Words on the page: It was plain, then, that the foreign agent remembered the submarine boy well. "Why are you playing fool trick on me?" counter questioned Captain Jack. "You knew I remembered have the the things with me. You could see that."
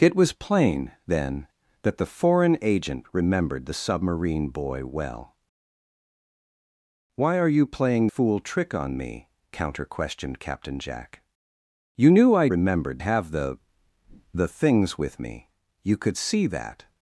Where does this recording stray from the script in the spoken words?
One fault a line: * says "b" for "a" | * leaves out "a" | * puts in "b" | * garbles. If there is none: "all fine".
all fine